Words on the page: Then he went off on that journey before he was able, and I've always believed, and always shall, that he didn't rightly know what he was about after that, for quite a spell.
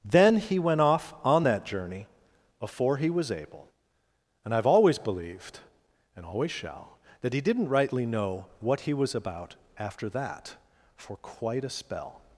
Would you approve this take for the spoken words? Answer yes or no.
yes